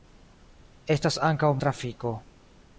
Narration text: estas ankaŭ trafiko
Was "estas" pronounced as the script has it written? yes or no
yes